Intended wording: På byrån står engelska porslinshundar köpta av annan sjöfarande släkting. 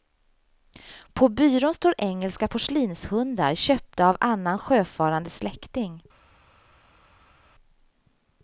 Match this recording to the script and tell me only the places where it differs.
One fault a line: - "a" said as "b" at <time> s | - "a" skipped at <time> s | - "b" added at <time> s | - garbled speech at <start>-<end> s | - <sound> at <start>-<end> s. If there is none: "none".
none